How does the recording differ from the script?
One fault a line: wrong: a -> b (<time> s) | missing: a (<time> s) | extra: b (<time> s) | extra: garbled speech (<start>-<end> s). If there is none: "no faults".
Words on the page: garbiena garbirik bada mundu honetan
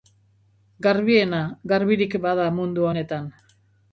no faults